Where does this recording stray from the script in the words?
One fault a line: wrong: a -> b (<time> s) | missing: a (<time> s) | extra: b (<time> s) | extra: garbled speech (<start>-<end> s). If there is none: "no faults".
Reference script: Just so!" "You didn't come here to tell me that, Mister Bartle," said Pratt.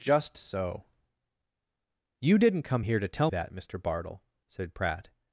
missing: me (3.3 s)